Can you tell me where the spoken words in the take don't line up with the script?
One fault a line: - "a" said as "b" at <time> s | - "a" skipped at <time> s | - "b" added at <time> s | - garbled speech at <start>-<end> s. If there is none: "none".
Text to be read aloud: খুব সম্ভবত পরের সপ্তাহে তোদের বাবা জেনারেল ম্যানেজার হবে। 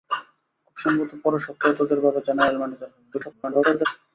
- garbled speech at 3.1-3.9 s